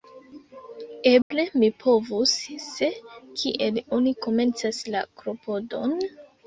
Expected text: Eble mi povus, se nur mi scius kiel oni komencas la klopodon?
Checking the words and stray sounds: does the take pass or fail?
fail